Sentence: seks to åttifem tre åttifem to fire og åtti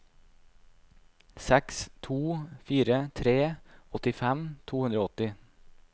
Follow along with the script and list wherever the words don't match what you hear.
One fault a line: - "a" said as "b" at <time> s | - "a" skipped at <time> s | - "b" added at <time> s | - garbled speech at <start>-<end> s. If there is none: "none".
- "åttifem" said as "fire" at 2.7 s
- "fire" said as "hundre" at 4.9 s